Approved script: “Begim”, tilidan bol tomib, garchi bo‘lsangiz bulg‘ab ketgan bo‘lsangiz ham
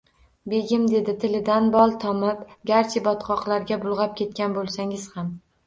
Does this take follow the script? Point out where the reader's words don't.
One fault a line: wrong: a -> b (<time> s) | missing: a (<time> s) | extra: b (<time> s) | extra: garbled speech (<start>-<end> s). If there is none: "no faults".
extra: dedi (0.9 s)
wrong: bo‘lsangiz -> botqoqlarga (3.1 s)